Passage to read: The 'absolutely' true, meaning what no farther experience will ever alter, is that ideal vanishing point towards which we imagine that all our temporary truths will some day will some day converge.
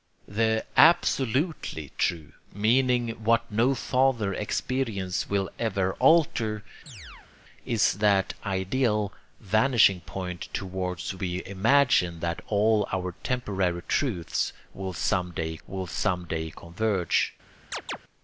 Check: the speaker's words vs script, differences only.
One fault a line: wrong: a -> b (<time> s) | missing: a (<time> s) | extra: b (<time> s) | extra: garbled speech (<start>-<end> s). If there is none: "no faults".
no faults